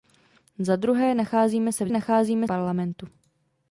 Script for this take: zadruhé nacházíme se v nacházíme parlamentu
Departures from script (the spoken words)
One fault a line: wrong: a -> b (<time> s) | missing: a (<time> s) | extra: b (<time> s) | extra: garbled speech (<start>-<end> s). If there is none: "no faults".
no faults